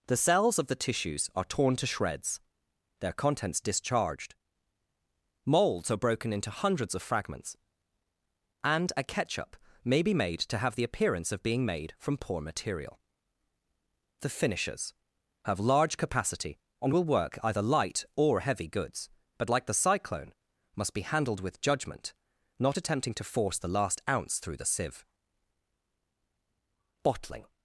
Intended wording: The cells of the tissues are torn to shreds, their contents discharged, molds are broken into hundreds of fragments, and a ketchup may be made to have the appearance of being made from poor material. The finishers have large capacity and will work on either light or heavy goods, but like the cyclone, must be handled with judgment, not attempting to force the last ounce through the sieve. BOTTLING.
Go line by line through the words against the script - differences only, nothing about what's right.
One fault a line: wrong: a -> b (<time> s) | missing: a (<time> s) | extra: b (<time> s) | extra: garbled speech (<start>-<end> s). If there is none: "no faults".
missing: on (17.4 s)